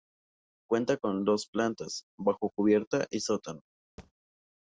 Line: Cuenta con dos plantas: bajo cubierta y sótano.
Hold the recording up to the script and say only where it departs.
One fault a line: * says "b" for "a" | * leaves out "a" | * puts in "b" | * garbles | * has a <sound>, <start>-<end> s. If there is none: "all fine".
* has a thud, 4.0-4.1 s